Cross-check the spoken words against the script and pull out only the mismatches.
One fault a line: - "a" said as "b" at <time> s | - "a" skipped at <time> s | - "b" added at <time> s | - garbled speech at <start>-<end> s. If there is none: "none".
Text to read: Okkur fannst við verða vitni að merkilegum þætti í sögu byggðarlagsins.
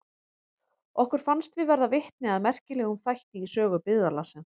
none